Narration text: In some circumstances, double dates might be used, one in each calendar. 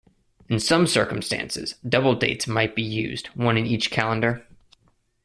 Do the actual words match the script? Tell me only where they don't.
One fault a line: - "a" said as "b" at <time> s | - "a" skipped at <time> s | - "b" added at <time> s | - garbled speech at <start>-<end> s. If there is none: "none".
none